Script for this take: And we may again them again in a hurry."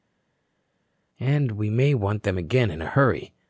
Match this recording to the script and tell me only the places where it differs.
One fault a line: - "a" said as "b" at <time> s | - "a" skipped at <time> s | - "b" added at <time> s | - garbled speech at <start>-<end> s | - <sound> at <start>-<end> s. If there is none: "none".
- "again" said as "want" at 1.9 s